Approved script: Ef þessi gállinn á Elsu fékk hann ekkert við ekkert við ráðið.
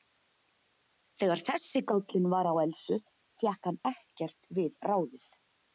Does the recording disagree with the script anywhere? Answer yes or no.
yes